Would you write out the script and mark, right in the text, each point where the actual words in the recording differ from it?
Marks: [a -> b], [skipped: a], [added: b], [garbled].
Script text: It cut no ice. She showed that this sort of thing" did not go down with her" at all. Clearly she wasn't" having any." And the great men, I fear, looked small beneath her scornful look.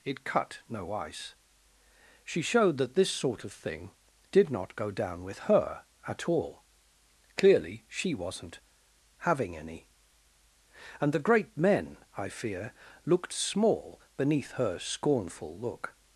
It cut no ice. She showed that this sort of thing" did not go down with her" at all. Clearly she wasn't" having any." And the great men, I fear, looked small beneath her scornful look.